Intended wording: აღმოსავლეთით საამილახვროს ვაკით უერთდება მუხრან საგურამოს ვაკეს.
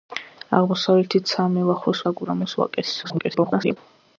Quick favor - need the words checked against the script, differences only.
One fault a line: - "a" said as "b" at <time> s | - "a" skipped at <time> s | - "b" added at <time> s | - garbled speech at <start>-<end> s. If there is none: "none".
- "ვაკით უერთდება მუხრან" skipped at 2.0 s
- garbled speech at 3.0-3.8 s